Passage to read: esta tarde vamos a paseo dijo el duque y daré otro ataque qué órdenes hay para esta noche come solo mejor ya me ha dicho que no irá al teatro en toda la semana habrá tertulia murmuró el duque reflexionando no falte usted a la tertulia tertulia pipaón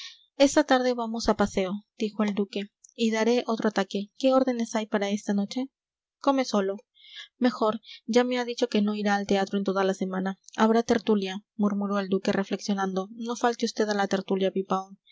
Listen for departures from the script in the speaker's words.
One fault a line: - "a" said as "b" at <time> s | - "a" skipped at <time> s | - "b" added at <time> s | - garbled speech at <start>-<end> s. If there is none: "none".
- "tertulia" skipped at 14.5 s